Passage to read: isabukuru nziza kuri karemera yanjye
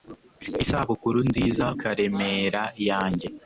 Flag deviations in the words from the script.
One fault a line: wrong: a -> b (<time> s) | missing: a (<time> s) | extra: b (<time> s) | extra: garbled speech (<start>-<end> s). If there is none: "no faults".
missing: kuri (1.6 s)